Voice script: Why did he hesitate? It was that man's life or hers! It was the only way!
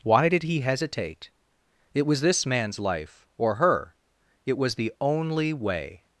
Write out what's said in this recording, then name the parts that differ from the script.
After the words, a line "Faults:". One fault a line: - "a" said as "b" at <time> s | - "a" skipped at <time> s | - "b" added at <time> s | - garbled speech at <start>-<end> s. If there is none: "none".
Why did he hesitate? It was this man's life or her! It was the only way!
Faults:
- "that" said as "this" at 2.2 s
- "hers" said as "her" at 3.5 s